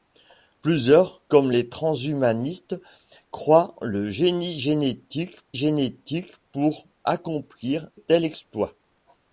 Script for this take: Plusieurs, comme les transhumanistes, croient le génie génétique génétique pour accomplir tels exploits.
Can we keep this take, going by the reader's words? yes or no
yes